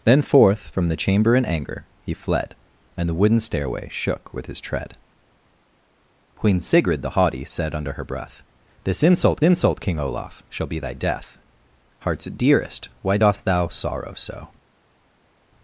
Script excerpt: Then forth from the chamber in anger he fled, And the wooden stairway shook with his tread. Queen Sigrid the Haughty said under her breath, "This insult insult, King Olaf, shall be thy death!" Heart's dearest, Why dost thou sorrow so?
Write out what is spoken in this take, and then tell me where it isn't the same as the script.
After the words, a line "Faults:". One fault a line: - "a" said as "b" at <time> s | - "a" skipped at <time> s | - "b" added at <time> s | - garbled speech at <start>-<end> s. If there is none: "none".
Then forth from the chamber in anger he fled, And the wooden stairway shook with his tread. Queen Sigrid the Haughty said under her breath, "This insult insult, King Olaf, shall be thy death!" Heart's dearest, Why dost thou sorrow so?
Faults:
none